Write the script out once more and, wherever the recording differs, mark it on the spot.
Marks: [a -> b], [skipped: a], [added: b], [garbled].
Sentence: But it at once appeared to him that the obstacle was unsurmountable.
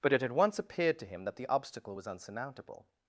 But it [at -> had] once appeared to him that the obstacle was unsurmountable.